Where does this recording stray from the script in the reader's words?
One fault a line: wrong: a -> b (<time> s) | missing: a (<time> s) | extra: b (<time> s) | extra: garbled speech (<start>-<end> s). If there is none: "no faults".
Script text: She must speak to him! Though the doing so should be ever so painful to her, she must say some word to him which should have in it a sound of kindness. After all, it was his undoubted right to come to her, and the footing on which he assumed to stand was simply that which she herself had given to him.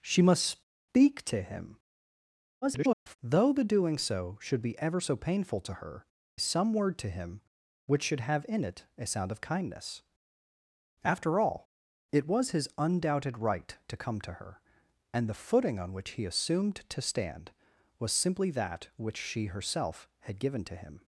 extra: garbled speech (2.6-3.2 s)
missing: she must say (6.0 s)